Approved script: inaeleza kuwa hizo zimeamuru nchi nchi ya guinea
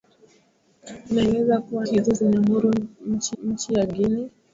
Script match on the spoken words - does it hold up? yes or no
yes